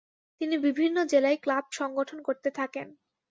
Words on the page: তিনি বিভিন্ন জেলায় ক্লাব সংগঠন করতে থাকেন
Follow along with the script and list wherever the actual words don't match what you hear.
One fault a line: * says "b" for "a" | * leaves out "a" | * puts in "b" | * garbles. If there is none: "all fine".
all fine